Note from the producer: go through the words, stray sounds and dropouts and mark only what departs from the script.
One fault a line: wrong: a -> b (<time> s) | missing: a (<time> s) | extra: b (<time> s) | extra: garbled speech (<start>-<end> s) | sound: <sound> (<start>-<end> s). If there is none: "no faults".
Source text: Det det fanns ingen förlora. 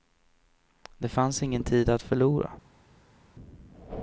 missing: det (1.1 s)
extra: tid att (1.6 s)